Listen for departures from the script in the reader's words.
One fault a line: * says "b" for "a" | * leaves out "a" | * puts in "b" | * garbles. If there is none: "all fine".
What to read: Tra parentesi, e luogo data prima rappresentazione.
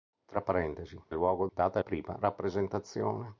all fine